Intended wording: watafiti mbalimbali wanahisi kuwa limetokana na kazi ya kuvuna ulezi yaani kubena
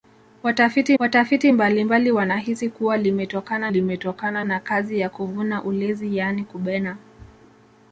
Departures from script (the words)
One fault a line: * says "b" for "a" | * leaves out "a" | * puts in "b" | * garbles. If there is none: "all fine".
* puts in "watafiti"
* puts in "limetokana"